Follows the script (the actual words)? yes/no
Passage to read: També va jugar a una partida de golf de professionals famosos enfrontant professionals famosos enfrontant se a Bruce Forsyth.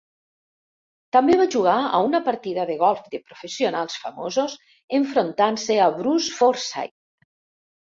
no